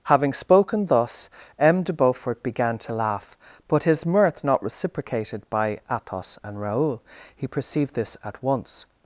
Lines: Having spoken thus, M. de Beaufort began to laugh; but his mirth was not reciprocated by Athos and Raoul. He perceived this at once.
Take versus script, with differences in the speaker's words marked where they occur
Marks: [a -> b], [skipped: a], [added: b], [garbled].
Having spoken thus, M. de Beaufort began to laugh; but his mirth [skipped: was] not reciprocated by Athos and Raoul. He perceived this at once.